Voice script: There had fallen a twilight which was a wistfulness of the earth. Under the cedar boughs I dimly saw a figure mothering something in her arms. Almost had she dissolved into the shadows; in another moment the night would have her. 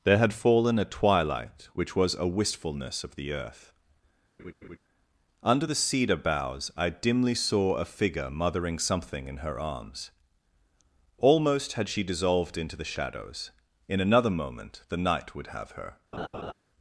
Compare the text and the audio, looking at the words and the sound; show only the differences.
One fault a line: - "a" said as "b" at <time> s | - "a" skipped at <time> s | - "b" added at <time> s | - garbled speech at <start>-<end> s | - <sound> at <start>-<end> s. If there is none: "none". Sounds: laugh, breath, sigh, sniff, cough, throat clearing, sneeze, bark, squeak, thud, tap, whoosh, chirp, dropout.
- laugh at 4.4-4.8 s
- laugh at 16.1-16.5 s